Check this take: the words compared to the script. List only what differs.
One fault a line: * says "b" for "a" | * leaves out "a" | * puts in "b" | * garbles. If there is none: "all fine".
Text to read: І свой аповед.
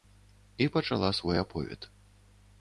* puts in "пачала"